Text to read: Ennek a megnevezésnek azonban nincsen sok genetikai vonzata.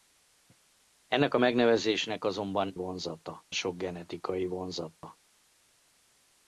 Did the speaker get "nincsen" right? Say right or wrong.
wrong